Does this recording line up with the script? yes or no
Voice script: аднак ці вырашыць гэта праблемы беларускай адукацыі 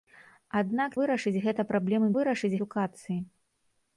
no